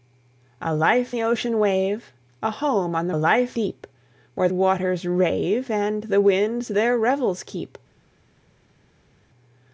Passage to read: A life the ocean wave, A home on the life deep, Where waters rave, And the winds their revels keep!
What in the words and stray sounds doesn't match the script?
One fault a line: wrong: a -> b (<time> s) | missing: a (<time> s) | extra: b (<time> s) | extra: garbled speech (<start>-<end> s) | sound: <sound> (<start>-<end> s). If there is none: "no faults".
no faults